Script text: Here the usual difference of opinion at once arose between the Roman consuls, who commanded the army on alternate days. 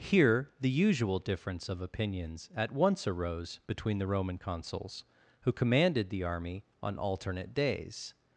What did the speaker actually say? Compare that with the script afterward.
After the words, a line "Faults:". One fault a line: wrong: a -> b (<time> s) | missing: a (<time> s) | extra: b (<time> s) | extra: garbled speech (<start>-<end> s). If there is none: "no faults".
Here the usual difference of opinions at once arose between the Roman consuls, who commanded the army on alternate days.
Faults:
wrong: opinion -> opinions (1.8 s)